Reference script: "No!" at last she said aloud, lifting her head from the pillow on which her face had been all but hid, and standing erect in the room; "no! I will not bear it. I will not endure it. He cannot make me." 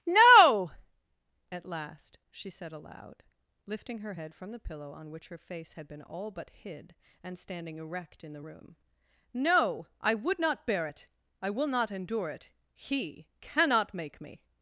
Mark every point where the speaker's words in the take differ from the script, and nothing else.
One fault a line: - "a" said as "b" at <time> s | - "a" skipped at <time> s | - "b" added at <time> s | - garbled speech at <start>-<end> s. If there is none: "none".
- "will" said as "would" at 10.1 s